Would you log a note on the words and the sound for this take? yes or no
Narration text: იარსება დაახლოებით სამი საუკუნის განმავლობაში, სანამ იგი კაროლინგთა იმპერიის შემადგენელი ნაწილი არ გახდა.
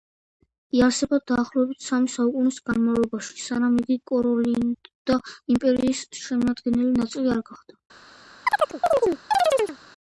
yes